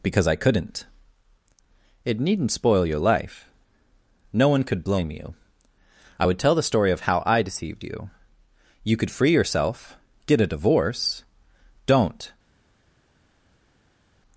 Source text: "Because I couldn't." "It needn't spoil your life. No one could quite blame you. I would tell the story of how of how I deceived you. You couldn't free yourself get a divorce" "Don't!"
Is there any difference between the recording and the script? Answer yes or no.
yes